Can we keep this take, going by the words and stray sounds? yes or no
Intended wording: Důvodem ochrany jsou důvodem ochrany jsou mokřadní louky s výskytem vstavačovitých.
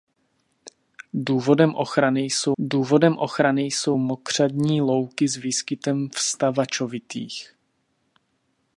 yes